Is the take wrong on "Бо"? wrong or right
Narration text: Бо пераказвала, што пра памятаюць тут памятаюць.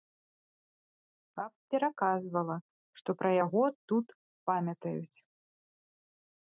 wrong